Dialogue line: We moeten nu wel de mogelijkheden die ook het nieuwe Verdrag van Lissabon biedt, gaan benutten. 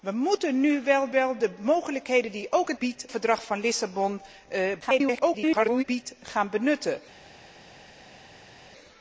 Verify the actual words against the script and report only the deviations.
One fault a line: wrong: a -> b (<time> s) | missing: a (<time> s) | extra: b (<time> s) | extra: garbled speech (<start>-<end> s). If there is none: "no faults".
extra: wel (1.1 s)
wrong: nieuwe -> biedt (2.8 s)
extra: garbled speech (4.8-5.8 s)